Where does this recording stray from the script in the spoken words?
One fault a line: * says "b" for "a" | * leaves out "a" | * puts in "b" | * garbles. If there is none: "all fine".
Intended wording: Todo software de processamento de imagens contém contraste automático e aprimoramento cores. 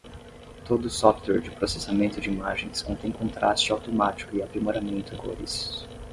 all fine